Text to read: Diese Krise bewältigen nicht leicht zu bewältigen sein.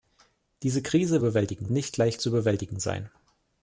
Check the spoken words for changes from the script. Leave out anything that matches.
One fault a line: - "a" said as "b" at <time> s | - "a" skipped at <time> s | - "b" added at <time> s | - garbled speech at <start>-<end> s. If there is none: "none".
none